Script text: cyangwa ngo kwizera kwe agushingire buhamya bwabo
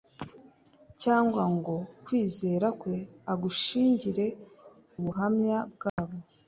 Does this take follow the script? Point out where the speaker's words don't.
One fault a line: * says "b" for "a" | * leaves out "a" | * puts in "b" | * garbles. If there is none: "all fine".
all fine